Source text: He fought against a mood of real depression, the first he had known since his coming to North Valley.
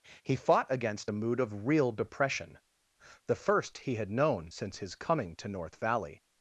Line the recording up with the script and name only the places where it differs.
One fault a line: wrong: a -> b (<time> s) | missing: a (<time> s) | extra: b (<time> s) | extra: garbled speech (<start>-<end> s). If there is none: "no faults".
no faults